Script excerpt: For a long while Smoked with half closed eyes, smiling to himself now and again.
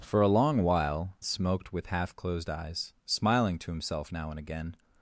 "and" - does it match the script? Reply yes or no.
yes